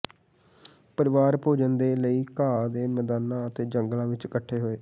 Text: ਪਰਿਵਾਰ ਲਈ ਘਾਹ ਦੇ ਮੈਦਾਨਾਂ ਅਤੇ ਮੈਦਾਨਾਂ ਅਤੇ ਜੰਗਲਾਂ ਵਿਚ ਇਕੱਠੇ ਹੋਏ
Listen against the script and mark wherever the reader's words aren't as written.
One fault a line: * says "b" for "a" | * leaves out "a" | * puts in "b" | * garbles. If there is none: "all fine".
* puts in "ਭੋਜਨ ਦੇ"
* leaves out "ਮੈਦਾਨਾਂ ਅਤੇ"